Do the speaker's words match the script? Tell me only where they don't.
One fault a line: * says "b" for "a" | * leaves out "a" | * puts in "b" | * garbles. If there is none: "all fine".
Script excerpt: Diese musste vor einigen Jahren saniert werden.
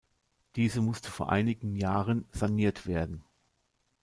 all fine